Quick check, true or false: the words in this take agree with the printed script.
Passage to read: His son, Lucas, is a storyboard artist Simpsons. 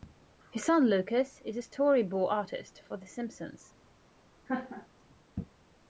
false